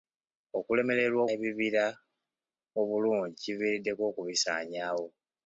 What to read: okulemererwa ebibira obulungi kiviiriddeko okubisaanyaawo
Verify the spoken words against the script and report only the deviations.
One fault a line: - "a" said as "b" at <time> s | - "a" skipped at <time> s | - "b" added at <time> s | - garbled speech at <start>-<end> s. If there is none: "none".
none